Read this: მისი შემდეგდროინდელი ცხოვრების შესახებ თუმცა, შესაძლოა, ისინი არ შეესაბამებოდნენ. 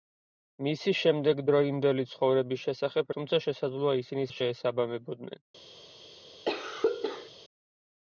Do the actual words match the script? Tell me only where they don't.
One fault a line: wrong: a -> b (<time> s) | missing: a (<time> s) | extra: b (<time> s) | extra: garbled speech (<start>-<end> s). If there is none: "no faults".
no faults